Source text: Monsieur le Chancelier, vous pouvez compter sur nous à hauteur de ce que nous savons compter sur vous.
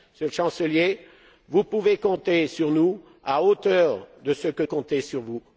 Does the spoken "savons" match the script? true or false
false